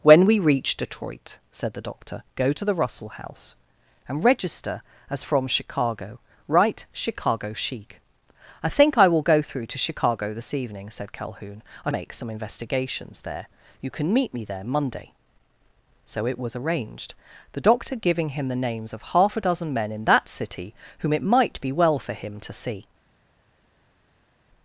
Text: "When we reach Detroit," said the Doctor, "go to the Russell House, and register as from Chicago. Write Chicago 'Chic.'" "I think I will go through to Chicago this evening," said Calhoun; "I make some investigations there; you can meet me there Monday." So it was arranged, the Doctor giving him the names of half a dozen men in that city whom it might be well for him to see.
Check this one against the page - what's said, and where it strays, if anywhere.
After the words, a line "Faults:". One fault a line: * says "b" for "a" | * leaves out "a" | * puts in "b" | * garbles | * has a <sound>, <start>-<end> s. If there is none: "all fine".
"When we reach Detroit," said the Doctor, "go to the Russell House, and register as from Chicago. Write Chicago 'Chic.'" "I think I will go through to Chicago this evening," said Calhoun; "I make some investigations there; you can meet me there Monday." So it was arranged, the Doctor giving him the names of half a dozen men in that city whom it might be well for him to see.
Faults:
all fine